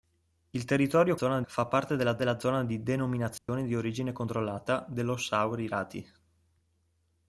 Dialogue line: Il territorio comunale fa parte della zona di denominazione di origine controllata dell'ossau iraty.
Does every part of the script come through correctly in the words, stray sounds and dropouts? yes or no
no